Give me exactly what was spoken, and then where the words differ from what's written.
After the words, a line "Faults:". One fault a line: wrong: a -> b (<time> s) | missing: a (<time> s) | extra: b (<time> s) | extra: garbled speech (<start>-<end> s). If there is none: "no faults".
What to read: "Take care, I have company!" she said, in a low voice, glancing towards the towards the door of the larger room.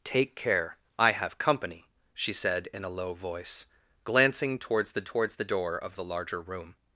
"Take care, I have company!" she said, in a low voice, glancing towards the towards the door of the larger room.
Faults:
no faults